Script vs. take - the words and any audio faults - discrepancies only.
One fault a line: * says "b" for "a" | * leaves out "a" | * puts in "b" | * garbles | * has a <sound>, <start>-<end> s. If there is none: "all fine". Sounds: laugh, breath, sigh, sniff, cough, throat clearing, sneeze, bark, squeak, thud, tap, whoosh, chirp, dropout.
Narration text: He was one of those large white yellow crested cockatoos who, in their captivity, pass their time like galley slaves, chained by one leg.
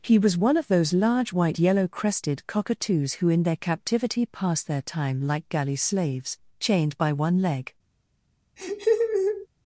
* has a laugh, 8.6-9.5 s